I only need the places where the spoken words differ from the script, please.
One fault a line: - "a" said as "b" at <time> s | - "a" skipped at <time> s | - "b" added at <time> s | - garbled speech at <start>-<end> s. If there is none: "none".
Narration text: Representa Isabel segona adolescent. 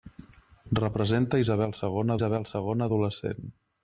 - "Isabel segona" added at 2.2 s